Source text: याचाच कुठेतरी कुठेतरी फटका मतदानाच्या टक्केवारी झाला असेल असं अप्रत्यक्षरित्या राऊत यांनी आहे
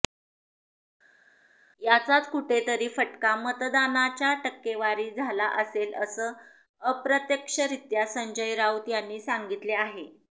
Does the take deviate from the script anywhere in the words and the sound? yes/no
yes